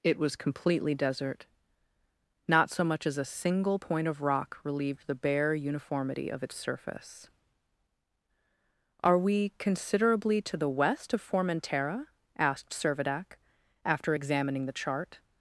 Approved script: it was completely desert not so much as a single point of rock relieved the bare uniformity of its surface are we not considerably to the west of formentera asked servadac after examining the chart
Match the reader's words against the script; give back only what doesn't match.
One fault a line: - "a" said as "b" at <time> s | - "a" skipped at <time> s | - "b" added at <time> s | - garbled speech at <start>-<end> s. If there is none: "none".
- "not" skipped at 9.5 s